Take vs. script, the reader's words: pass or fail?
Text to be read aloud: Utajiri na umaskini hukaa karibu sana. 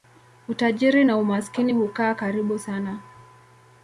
pass